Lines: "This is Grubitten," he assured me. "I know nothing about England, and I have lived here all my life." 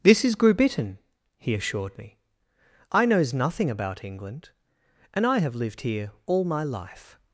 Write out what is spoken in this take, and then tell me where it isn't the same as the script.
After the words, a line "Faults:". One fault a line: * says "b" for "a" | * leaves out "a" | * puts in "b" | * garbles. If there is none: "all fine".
"This is Grubitten," he assured me. "I knows nothing about England, and I have lived here all my life."
Faults:
* says "knows" for "know"